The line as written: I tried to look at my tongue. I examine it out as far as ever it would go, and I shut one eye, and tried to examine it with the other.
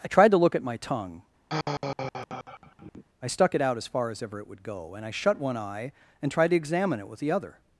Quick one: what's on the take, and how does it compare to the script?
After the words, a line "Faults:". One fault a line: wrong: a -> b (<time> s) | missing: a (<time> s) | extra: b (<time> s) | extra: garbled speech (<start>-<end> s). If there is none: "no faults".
I tried to look at my tongue. I stuck it out as far as ever it would go, and I shut one eye, and tried to examine it with the other.
Faults:
wrong: examine -> stuck (3.3 s)